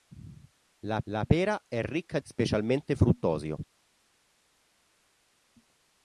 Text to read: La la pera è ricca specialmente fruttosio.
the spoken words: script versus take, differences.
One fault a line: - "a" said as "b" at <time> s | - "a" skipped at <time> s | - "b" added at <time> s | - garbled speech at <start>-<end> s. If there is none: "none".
none